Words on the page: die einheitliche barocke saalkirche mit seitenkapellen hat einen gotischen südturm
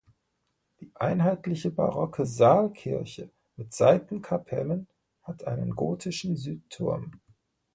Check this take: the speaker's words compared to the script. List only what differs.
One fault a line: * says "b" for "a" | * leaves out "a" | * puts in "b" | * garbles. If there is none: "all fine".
all fine